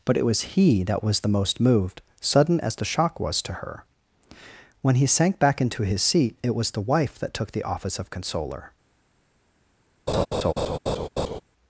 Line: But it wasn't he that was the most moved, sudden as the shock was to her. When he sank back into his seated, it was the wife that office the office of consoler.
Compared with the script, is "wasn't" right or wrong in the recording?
wrong